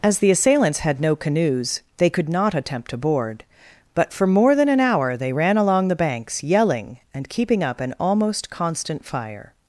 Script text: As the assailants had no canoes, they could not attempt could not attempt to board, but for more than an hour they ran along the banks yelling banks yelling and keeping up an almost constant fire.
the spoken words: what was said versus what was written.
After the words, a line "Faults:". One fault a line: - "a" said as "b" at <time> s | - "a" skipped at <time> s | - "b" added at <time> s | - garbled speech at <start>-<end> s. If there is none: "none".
As the assailants had no canoes, they could not attempt to board, but for more than an hour they ran along the banks yelling and keeping up an almost constant fire.
Faults:
- "could not attempt" skipped at 2.9 s
- "banks yelling" skipped at 7.0 s